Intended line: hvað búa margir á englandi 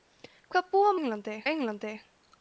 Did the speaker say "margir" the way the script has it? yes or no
no